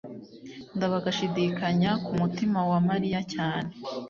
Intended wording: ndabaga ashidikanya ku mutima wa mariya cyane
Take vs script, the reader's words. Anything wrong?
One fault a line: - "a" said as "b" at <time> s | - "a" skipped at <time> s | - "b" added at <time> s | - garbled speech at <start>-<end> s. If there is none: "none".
none